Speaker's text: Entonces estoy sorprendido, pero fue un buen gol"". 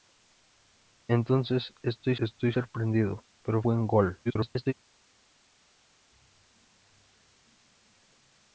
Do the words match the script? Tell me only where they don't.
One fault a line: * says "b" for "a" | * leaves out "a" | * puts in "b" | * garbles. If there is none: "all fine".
* puts in "estoy"
* leaves out "fue un"
* garbles